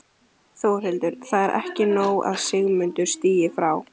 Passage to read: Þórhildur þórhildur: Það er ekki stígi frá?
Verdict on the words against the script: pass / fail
fail